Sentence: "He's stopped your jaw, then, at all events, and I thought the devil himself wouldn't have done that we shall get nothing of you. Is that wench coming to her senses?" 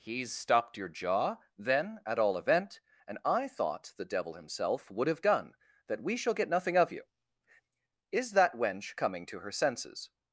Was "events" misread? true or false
true